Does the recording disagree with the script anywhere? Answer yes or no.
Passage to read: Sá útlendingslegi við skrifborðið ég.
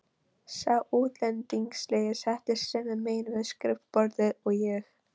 yes